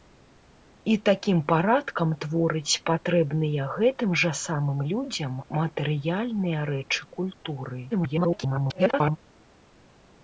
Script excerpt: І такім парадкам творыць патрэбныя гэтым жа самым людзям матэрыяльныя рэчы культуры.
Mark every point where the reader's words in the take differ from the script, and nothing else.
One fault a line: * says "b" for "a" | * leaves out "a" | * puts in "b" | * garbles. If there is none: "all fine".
* garbles